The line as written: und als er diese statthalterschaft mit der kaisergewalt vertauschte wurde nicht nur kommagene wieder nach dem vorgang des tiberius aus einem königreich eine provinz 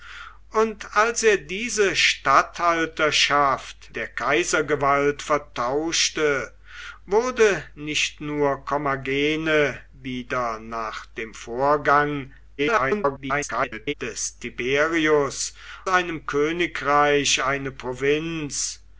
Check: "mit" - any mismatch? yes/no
yes